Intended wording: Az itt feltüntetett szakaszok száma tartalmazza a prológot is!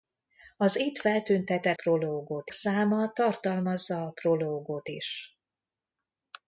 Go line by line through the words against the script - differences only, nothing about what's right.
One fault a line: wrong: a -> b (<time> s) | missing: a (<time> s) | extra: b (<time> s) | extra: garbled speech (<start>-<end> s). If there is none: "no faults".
wrong: szakaszok -> prológot (1.7 s)